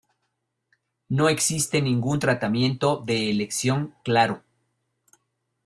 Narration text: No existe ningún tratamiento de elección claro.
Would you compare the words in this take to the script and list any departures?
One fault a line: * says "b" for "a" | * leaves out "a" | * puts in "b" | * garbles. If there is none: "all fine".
all fine